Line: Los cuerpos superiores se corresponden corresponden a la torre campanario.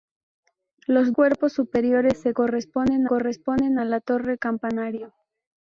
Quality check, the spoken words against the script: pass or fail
pass